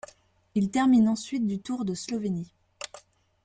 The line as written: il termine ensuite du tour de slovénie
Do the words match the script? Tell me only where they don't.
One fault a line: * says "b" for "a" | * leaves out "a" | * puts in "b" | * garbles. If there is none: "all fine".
all fine